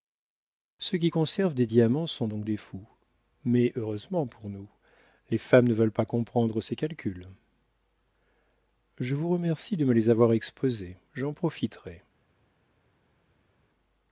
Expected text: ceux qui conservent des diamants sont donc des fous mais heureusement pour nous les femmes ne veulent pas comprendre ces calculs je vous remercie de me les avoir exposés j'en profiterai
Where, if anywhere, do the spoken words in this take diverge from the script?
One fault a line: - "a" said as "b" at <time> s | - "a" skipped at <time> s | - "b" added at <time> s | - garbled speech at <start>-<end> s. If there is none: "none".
none